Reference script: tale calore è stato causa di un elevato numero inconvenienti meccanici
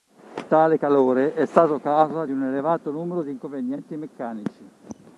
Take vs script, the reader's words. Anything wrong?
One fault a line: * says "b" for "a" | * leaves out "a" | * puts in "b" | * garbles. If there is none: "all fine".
* puts in "di"